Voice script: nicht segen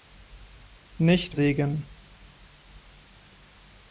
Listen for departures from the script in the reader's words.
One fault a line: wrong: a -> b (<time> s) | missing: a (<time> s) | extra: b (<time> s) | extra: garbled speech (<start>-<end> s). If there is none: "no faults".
no faults